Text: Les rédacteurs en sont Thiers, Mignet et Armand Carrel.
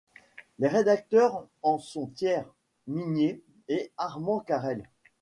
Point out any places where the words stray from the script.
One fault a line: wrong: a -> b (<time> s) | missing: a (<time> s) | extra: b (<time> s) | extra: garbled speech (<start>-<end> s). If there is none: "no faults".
no faults